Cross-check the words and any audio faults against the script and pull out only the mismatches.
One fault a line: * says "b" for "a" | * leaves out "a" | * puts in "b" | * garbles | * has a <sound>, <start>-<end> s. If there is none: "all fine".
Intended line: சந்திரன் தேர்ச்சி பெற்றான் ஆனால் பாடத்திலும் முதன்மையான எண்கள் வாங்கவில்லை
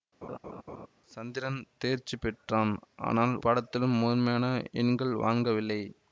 * has a laugh, 0.2-0.9 s